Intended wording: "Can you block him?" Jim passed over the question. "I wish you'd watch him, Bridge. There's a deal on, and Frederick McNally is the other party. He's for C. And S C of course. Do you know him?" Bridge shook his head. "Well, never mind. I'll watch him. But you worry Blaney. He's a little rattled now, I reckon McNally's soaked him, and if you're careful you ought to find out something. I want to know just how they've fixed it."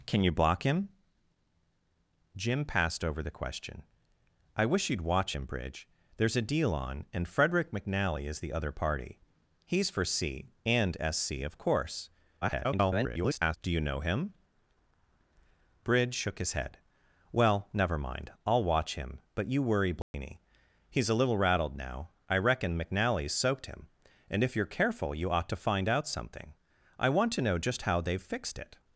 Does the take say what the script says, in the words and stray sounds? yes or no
no